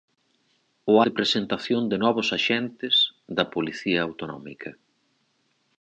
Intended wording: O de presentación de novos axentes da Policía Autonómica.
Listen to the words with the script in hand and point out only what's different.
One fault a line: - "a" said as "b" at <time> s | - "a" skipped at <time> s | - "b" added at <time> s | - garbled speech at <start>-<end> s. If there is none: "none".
none